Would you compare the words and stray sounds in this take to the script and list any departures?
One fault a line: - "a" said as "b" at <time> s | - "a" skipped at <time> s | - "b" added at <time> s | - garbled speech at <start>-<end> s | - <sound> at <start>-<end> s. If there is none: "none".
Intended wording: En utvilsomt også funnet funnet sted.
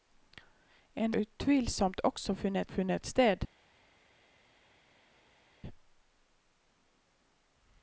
none